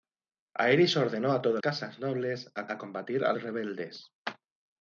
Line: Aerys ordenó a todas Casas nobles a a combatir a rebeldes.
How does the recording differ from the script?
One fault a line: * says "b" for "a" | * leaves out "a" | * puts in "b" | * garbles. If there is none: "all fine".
all fine